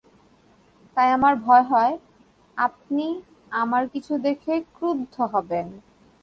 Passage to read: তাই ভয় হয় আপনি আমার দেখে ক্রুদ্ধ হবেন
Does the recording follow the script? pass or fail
fail